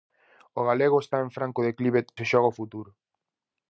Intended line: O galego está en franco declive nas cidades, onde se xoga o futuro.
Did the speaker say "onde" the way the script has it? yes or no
no